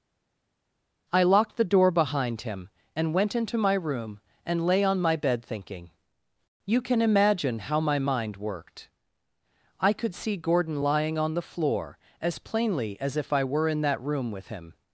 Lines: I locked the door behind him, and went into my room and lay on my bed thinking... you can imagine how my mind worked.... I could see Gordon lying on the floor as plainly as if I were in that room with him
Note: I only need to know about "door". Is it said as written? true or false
true